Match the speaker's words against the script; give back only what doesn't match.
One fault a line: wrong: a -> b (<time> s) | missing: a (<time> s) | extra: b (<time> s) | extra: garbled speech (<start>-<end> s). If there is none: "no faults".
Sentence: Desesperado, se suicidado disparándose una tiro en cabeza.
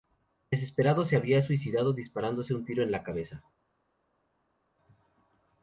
extra: había (1.1 s)
wrong: una -> un (2.5 s)
extra: la (2.9 s)